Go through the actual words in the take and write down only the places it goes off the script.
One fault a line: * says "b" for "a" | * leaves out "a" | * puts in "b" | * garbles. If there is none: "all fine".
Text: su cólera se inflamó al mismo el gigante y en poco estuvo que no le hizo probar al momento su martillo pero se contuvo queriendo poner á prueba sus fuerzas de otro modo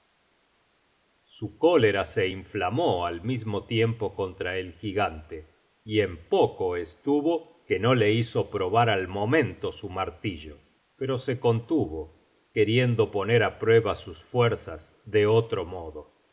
* puts in "tiempo contra"